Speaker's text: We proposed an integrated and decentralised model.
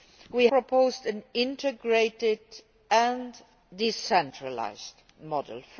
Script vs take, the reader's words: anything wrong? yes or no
no